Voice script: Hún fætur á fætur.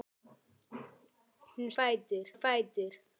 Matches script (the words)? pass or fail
pass